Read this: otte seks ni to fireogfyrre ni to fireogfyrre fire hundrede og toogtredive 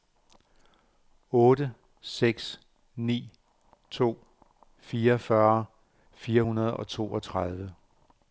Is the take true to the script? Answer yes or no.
no